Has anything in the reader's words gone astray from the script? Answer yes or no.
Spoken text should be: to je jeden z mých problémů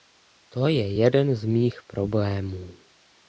no